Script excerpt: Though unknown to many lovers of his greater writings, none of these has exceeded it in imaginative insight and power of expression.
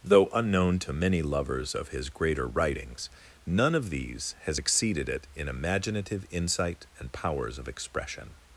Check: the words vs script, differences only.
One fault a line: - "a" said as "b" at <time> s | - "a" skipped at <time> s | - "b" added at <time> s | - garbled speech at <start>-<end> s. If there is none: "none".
- "power" said as "powers" at 7.1 s